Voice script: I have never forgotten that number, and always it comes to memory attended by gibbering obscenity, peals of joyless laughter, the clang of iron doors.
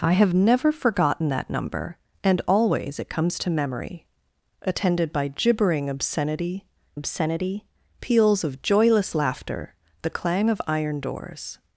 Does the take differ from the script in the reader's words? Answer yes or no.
yes